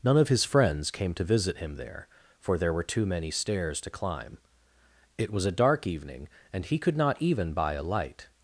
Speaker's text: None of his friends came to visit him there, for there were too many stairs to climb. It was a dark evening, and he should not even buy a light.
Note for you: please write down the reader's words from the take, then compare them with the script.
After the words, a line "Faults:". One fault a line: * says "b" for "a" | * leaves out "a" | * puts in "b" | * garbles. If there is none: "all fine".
None of his friends came to visit him there, for there were too many stairs to climb. It was a dark evening, and he could not even buy a light.
Faults:
* says "could" for "should"